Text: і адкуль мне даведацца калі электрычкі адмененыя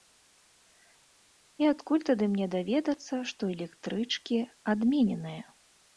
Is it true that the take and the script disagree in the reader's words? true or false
true